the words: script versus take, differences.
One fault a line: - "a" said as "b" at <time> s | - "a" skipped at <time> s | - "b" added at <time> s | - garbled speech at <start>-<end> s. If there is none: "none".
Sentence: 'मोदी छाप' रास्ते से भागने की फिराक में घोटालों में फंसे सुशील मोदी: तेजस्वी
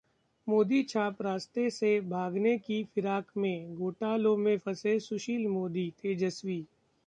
none